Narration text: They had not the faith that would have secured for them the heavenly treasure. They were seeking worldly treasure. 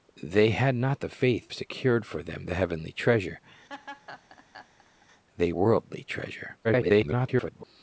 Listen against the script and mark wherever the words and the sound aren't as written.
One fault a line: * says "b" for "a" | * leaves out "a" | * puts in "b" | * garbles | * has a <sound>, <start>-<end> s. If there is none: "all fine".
* leaves out "that would have"
* has a laugh, 3.7-5.1 s
* leaves out "were seeking"
* garbles